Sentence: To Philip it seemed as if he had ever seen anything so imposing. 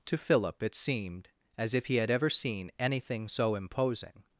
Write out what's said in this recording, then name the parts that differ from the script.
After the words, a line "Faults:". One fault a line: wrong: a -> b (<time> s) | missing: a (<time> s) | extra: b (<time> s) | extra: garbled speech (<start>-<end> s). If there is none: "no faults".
To Philip it seemed as if he had ever seen anything so imposing.
Faults:
no faults